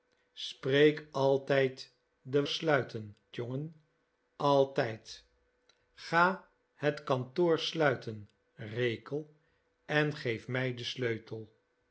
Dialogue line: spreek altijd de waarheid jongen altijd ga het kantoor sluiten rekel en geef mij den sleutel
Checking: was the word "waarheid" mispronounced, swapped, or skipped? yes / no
yes